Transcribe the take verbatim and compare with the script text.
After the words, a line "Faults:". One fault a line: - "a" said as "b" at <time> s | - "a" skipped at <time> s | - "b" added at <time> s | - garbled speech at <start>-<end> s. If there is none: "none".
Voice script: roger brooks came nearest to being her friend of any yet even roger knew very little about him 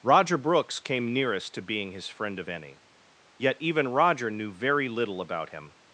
roger brooks came nearest to being his friend of any yet even roger knew very little about him
Faults:
- "her" said as "his" at 1.9 s